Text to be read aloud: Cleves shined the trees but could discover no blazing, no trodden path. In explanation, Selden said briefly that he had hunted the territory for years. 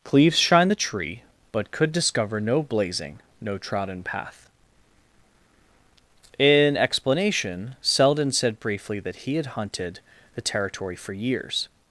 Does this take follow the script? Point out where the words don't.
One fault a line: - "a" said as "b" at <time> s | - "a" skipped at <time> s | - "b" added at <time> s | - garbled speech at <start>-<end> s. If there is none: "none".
- "trees" said as "tree" at 0.8 s